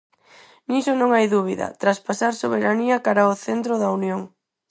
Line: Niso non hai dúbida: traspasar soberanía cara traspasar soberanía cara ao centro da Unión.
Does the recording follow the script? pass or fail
fail